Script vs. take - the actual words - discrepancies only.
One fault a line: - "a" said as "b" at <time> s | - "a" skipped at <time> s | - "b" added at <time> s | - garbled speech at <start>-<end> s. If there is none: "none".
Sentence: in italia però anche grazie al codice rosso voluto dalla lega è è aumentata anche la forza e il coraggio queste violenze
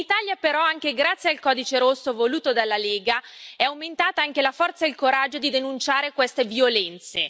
- "è" skipped at 3.6 s
- "di denunciare" added at 5.4 s